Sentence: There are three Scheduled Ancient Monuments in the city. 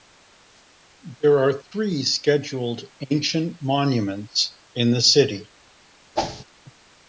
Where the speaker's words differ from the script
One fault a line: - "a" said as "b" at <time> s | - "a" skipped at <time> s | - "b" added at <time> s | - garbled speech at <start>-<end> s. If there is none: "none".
none